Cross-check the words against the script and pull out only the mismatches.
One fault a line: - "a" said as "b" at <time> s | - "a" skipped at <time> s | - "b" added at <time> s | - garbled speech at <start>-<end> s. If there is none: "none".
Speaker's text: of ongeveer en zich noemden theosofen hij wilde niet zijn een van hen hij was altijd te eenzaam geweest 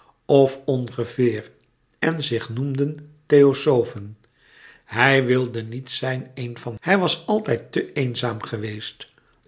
- "hen" skipped at 6.8 s